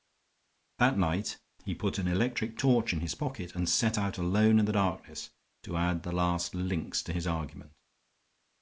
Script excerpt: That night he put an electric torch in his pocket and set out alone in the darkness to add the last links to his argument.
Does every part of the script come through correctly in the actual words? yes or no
yes